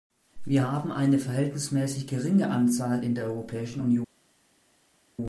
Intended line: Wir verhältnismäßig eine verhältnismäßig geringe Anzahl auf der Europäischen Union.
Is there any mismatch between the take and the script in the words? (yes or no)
yes